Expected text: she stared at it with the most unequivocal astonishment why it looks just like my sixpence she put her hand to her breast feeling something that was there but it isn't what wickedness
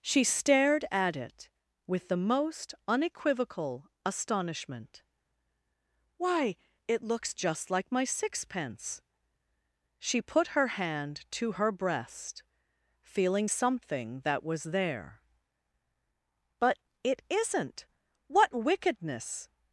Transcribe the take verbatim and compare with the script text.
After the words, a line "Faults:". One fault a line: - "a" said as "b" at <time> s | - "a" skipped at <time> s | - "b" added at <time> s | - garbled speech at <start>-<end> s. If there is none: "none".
she stared at it with the most unequivocal astonishment why it looks just like my sixpence she put her hand to her breast feeling something that was there but it isn't what wickedness
Faults:
none